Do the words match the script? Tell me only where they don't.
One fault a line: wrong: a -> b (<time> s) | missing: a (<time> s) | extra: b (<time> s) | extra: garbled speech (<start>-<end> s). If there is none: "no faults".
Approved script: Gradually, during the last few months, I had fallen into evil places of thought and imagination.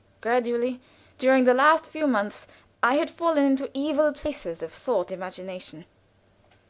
missing: and (5.1 s)